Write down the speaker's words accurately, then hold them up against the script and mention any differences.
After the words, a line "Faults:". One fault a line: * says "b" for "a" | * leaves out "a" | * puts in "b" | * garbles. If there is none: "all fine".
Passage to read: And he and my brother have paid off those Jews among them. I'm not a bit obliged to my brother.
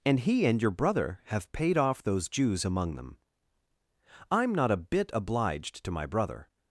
And he and your brother have paid off those Jews among them. I'm not a bit obliged to my brother.
Faults:
* says "your" for "my"